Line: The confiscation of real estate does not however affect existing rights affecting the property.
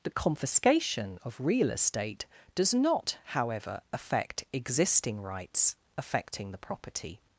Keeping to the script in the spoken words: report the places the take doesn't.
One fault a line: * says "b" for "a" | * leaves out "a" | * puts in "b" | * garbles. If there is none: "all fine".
all fine